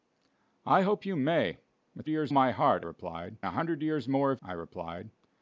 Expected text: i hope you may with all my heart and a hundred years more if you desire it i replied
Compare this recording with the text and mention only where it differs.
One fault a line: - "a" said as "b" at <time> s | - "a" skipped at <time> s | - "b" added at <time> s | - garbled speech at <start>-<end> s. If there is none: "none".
- "all" said as "years" at 2.1 s
- "and" said as "replied" at 2.8 s
- "you desire it" skipped at 4.4 s